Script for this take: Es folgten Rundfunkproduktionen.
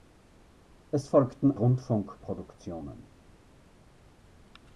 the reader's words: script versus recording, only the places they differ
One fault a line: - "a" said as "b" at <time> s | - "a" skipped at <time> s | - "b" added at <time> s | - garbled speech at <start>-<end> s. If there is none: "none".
none